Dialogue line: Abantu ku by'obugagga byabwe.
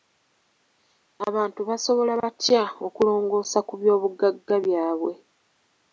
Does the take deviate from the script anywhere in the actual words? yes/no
yes